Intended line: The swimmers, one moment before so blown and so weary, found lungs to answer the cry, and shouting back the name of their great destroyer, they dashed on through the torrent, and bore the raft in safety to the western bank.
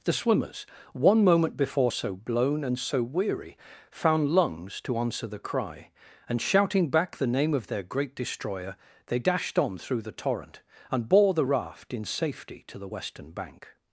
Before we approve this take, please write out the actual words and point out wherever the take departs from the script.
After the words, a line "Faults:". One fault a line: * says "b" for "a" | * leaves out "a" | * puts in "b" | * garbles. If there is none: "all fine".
The swimmers, one moment before so blown and so weary, found lungs to answer the cry, and shouting back the name of their great destroyer, they dashed on through the torrent, and bore the raft in safety to the western bank.
Faults:
all fine